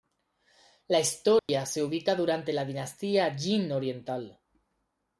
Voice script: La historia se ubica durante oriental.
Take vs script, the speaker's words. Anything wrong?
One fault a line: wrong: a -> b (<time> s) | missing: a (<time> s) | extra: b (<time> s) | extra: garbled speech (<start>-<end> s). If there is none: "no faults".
extra: la dinastía Jin (2.5 s)